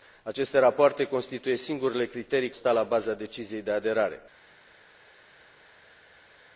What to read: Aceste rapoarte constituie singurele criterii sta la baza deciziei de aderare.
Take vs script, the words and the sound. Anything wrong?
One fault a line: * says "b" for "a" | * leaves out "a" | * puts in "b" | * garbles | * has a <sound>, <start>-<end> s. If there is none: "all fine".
all fine